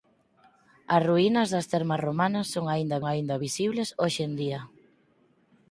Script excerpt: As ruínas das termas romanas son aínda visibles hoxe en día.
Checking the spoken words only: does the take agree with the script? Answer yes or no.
no